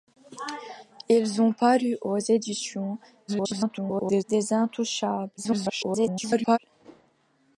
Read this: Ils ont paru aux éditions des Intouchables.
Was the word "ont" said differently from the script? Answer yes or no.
no